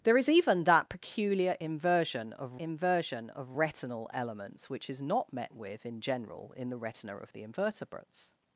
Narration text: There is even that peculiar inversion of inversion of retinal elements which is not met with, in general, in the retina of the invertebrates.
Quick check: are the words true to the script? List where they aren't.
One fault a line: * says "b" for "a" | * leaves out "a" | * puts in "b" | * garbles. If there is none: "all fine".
all fine